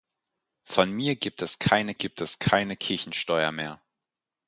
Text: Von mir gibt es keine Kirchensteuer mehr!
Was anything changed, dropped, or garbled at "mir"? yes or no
no